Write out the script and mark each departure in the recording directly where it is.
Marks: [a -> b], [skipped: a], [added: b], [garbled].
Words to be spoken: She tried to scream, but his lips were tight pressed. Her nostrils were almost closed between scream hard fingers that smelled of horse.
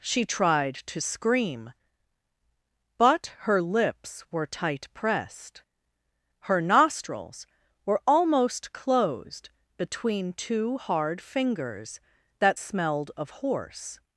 She tried to scream, but [his -> her] lips were tight pressed. Her nostrils were almost closed between [scream -> two] hard fingers that smelled of horse.